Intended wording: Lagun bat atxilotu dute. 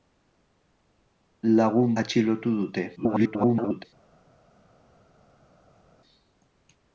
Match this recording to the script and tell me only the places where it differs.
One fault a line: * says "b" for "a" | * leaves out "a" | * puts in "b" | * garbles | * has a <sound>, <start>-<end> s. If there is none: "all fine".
* leaves out "bat"
* garbles